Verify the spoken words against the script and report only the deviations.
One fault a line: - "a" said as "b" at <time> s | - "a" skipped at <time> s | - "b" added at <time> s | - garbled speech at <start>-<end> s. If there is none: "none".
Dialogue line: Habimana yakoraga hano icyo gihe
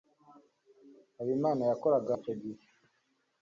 - "hano" skipped at 2.1 s